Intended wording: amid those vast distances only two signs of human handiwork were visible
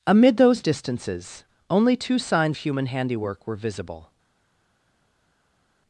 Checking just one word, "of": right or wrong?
wrong